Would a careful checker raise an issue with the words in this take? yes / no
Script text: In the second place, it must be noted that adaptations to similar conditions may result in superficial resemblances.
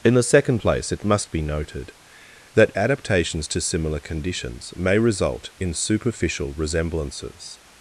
no